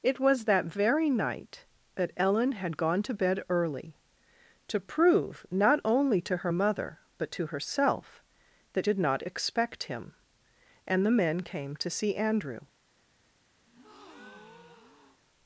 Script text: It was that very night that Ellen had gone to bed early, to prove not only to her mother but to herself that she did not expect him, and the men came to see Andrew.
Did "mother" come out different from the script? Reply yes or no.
no